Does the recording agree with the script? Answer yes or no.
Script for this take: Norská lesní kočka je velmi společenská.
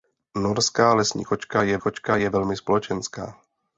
no